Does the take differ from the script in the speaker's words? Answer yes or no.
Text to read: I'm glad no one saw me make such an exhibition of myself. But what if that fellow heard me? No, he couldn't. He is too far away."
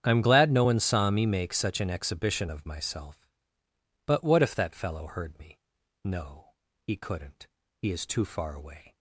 no